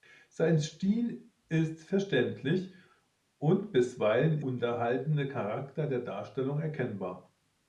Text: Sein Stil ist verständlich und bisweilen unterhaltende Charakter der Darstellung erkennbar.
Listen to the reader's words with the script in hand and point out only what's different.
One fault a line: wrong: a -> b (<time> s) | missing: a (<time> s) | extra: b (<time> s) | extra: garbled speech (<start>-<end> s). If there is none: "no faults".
no faults